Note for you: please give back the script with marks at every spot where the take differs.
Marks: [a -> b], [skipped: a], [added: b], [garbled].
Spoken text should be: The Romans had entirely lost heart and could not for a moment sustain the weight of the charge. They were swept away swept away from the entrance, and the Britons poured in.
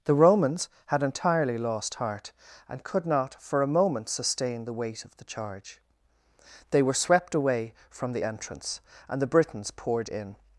The Romans had entirely lost heart and could not for a moment sustain the weight of the charge. They were swept away [skipped: swept away] from the entrance, and the Britons poured in.